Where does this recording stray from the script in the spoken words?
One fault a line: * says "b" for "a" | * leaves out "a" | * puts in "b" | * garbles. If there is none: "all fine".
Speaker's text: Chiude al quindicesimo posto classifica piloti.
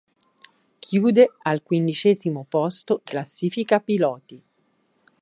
all fine